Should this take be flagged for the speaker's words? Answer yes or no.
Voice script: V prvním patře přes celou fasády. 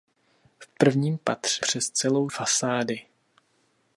no